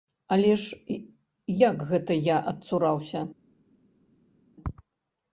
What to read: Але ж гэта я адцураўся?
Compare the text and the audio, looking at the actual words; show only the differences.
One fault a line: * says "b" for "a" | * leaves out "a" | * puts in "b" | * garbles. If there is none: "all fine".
* puts in "як"